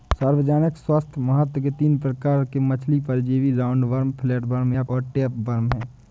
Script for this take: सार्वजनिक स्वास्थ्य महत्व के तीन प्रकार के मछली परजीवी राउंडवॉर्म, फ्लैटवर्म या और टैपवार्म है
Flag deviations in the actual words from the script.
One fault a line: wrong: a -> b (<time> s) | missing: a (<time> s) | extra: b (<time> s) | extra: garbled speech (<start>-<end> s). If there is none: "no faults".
no faults